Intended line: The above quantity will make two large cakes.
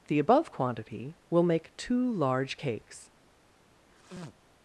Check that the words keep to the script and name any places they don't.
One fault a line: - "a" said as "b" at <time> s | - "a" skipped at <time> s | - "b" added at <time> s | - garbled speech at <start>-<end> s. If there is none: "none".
none